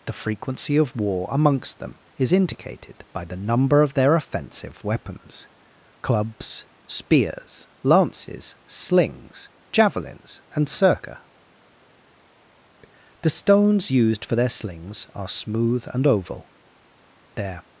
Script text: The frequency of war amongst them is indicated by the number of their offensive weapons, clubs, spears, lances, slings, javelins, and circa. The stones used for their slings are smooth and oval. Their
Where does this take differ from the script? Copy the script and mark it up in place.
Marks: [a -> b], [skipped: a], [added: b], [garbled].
The frequency of war amongst them is indicated by the number of their offensive weapons, clubs, spears, lances, slings, javelins, and circa. The stones used for their slings are smooth and oval. Their